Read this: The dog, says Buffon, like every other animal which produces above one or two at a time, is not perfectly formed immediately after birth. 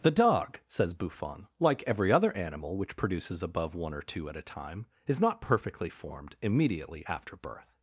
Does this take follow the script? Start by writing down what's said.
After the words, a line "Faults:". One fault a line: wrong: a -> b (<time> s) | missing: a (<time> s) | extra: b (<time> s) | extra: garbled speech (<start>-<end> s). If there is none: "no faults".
The dog, says Buffon, like every other animal which produces above one or two at a time, is not perfectly formed immediately after birth.
Faults:
no faults